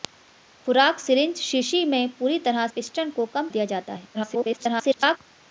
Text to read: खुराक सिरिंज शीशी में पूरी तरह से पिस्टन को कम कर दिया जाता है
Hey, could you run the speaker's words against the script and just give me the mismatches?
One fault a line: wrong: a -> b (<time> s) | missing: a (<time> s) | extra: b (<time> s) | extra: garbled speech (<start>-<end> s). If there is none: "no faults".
missing: से (2.7 s)
missing: कर (3.5 s)
extra: garbled speech (4.1-5.2 s)